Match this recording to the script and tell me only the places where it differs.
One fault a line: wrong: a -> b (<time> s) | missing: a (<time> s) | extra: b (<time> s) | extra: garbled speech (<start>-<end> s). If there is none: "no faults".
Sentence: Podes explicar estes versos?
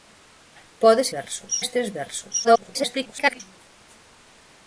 wrong: explicar -> versos (1.2 s)
extra: garbled speech (2.4-3.4 s)